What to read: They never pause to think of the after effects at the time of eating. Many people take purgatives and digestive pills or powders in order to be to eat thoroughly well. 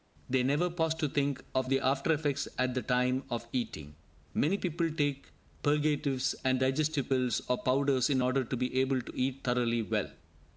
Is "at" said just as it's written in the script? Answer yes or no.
yes